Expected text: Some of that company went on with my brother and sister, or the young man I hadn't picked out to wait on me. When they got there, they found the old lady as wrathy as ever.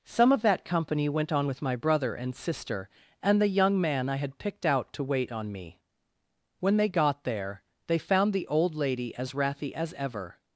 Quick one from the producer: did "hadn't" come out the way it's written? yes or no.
no